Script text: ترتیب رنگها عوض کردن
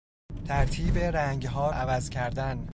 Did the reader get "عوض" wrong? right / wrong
right